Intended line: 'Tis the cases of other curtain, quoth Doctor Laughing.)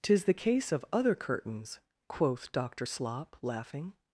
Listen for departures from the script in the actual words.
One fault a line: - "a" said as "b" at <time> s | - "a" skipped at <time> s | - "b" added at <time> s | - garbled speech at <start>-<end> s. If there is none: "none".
- "cases" said as "case" at 0.3 s
- "curtain" said as "curtains" at 1.1 s
- "Slop" added at 2.9 s